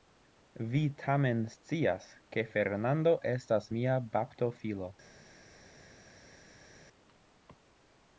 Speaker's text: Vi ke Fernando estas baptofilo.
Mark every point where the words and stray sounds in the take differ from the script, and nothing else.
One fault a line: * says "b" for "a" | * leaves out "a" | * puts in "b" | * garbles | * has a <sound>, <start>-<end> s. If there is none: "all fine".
* puts in "tamen scias"
* puts in "mia"